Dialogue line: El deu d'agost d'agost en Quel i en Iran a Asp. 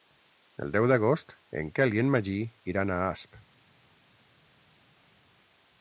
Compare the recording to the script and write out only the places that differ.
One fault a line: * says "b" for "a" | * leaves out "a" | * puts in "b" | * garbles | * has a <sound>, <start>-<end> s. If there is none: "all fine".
* leaves out "d'agost"
* puts in "Magí"